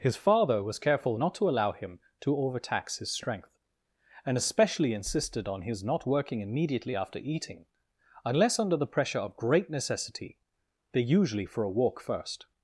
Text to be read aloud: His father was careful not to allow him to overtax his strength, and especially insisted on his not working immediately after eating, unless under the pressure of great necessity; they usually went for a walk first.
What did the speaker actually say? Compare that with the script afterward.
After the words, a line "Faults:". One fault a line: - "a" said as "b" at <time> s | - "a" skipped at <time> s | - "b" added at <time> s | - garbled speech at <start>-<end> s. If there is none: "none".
His father was careful not to allow him to overtax his strength, and especially insisted on his not working immediately after eating, unless under the pressure of great necessity; they usually for a walk first.
Faults:
- "went" skipped at 11.5 s